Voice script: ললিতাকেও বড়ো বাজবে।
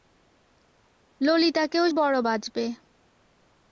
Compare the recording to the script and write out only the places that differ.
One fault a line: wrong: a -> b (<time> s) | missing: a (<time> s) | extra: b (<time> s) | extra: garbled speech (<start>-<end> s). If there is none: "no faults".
no faults